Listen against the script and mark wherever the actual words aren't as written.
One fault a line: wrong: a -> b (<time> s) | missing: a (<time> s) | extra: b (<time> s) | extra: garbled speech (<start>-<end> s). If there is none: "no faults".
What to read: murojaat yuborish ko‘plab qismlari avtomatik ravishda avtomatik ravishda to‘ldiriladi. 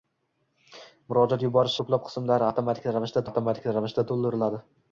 no faults